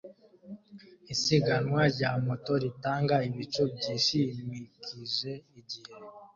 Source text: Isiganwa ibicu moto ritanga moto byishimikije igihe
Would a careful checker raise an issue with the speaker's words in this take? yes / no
yes